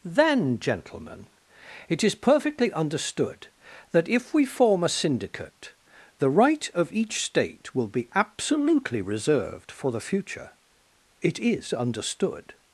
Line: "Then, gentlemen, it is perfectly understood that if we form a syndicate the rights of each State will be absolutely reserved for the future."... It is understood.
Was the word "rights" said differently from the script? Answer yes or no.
yes